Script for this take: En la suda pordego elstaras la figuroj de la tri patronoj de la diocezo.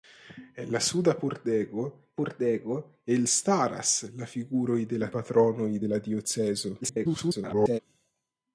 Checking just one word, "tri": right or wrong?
wrong